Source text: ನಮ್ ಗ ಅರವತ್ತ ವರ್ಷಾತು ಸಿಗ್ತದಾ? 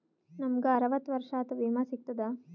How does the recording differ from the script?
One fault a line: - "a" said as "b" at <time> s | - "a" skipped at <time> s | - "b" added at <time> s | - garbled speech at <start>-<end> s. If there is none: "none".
- "ವಿಮಾ" added at 1.5 s